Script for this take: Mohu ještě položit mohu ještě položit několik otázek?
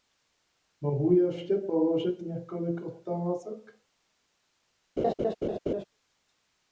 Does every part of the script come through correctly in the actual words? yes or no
no